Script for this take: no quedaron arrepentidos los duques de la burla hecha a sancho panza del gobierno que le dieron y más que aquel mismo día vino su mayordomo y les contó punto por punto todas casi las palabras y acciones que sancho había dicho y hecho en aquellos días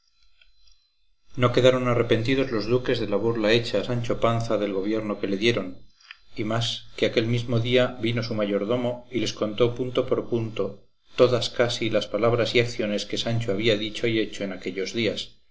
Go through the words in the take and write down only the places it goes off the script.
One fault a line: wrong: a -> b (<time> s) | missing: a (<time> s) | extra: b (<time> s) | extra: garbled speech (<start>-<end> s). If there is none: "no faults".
no faults